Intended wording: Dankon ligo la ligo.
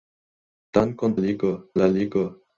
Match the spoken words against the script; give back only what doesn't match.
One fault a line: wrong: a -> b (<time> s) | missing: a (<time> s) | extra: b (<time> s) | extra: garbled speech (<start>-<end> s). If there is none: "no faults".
no faults